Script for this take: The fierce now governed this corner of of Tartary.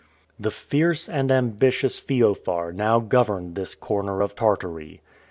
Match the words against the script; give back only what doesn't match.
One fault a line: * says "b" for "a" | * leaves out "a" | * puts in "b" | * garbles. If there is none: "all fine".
* puts in "and ambitious Feofar"
* leaves out "of"